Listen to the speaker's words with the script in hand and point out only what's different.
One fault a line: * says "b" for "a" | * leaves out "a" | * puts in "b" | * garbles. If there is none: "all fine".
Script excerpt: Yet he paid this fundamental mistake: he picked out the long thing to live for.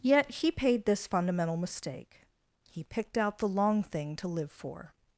all fine